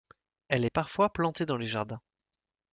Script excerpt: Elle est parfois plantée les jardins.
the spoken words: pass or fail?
fail